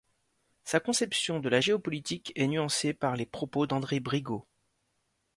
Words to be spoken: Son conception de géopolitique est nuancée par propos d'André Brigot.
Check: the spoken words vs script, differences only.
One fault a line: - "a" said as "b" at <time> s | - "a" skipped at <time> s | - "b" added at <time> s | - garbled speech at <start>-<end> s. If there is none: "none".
- "Son" said as "Sa" at 0.6 s
- "la" added at 1.5 s
- "les" added at 3.2 s